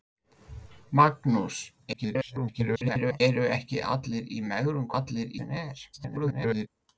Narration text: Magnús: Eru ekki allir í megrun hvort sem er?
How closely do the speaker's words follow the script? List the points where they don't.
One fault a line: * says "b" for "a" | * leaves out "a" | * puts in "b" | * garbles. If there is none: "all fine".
* garbles
* says "allir" for "hvort"
* garbles